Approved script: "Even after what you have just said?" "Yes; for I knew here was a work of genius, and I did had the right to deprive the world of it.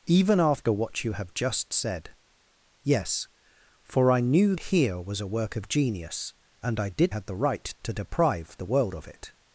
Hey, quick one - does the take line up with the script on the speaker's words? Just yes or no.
yes